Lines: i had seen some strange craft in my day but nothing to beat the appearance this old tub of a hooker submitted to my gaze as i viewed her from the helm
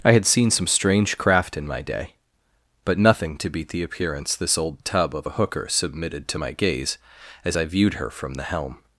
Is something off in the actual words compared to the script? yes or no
no